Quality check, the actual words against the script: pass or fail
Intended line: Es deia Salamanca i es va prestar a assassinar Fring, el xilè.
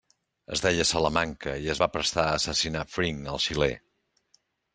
pass